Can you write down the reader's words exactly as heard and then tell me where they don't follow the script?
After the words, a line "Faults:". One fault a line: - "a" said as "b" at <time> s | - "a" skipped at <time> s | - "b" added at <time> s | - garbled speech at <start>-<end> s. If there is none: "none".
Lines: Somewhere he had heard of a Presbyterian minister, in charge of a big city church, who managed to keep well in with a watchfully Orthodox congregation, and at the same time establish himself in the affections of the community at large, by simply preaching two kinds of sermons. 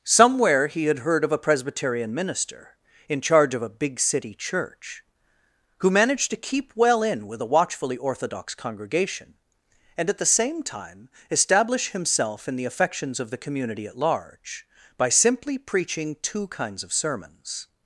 Somewhere he had heard of a Presbyterian minister, in charge of a big city church, who managed to keep well in with a watchfully Orthodox congregation, and at the same time establish himself in the affections of the community at large, by simply preaching two kinds of sermons.
Faults:
none